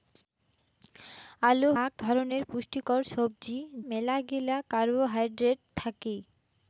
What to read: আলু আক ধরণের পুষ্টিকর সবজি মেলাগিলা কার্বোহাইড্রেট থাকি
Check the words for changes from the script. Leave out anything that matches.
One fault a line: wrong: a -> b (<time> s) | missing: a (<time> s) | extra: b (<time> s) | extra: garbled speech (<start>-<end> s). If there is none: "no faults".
no faults